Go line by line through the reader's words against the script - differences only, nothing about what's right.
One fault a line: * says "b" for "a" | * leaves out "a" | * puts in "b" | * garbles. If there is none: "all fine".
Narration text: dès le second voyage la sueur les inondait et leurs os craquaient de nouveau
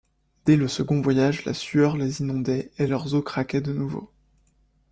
all fine